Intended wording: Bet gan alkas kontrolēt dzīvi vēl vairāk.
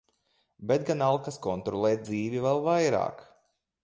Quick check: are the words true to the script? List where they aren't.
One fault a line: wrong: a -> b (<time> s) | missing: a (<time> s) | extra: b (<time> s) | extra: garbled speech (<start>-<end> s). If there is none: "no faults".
no faults